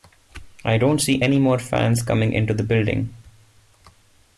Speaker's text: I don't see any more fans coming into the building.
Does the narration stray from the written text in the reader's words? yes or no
no